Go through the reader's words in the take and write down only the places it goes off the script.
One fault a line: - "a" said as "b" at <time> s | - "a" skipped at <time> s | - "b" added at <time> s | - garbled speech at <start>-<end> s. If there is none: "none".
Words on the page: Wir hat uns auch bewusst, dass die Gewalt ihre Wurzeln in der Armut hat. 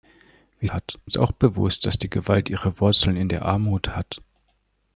none